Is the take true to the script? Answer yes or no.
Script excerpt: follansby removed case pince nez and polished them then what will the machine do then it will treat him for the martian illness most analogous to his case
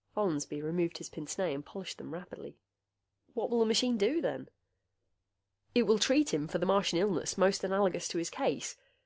no